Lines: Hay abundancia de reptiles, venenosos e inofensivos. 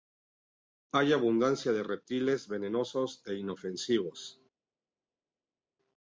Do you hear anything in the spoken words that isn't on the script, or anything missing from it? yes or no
no